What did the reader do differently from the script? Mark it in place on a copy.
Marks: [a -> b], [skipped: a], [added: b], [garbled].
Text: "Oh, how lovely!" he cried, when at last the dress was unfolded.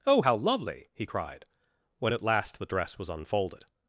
"Oh, how lovely!" he cried, when at last the dress was unfolded.